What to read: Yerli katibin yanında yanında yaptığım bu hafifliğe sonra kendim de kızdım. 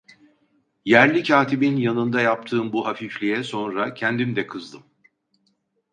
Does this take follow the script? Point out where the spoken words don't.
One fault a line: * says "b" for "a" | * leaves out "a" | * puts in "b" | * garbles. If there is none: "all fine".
* leaves out "yanında"